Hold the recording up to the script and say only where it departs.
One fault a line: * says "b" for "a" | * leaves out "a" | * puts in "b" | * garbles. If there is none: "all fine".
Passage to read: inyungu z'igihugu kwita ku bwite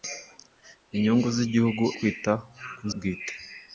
all fine